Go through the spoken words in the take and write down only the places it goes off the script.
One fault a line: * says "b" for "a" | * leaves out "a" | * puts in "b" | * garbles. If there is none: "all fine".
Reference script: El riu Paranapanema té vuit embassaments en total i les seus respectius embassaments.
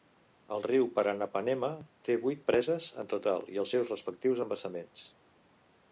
* says "preses" for "embassaments"
* says "els" for "les"